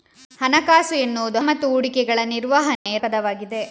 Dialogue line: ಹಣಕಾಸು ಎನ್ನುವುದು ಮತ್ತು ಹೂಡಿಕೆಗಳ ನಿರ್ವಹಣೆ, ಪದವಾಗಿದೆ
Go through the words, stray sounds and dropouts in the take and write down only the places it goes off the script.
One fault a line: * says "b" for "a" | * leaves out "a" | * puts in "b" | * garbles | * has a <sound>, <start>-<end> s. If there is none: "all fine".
* has a dropout, 2.8-2.9 s